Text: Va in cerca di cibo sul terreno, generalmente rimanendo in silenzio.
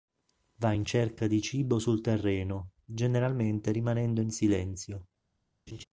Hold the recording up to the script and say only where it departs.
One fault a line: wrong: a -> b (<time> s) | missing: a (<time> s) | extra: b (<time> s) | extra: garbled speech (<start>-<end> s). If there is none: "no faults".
no faults